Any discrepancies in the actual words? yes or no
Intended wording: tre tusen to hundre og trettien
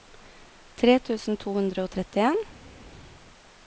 no